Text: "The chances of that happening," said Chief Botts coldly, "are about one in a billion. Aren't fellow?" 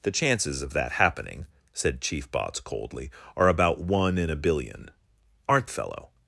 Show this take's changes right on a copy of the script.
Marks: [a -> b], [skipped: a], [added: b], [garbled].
"The chances of that happening," said Chief Botts coldly, "are about one in a billion. Aren't fellow?"